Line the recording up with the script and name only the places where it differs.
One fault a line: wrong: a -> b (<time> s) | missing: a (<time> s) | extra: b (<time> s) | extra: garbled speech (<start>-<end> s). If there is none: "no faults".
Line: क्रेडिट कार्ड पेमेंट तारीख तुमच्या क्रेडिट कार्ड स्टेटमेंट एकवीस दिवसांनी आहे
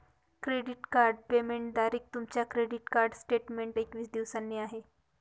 no faults